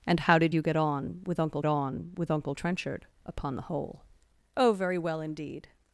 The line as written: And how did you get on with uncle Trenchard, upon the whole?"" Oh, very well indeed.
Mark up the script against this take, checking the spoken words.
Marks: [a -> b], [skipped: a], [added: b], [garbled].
And how did you get on with uncle [added: on with uncle] Trenchard, upon the whole?"" Oh, very well indeed.